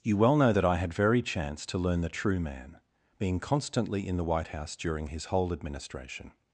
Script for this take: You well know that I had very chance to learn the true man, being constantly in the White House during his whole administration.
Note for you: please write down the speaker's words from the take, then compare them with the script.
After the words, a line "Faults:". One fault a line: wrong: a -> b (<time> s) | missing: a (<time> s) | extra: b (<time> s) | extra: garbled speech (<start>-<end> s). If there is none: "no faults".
You well know that I had very chance to learn the true man, being constantly in the White House during his whole administration.
Faults:
no faults